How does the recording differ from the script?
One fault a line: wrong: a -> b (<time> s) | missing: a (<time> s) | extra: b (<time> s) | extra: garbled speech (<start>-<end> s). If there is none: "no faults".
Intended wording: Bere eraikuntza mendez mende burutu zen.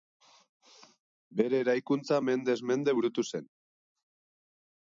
no faults